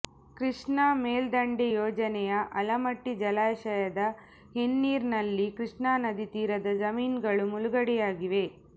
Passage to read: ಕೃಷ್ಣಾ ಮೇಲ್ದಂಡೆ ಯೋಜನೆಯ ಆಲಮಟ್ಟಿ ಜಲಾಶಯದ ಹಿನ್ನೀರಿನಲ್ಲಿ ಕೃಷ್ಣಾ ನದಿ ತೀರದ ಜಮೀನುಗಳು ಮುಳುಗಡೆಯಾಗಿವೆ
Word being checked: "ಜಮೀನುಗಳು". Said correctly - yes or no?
yes